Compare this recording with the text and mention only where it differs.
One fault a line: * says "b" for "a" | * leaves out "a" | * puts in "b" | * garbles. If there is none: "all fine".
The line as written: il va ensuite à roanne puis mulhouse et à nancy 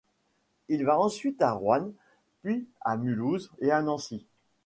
* puts in "à"